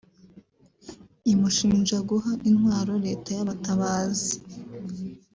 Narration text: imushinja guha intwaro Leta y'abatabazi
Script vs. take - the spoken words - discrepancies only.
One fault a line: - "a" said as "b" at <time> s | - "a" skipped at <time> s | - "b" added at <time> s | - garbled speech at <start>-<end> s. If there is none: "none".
none